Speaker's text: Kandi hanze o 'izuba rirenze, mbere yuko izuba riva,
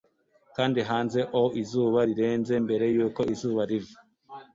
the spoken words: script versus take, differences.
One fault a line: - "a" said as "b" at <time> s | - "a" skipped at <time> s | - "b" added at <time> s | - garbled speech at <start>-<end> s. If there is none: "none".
none